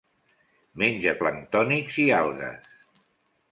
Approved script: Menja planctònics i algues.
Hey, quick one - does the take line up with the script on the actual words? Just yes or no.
yes